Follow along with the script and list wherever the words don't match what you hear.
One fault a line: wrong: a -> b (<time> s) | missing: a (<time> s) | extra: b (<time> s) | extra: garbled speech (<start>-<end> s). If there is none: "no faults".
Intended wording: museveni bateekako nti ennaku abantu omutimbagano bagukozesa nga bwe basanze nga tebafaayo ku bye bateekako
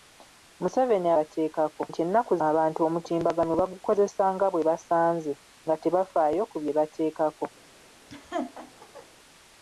no faults